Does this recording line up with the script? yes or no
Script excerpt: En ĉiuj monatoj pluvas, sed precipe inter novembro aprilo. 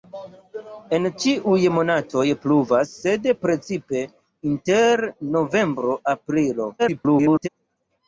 no